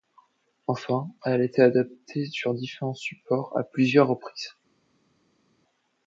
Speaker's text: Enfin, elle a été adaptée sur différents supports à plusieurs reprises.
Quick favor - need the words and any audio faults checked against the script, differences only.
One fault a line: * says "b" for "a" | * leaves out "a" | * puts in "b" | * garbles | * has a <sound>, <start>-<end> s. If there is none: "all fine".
all fine